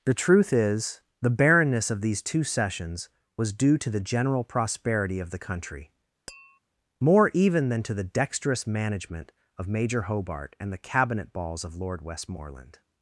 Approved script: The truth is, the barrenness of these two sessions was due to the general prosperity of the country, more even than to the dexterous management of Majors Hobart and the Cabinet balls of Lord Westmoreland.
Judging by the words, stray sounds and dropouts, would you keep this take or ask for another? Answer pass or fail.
fail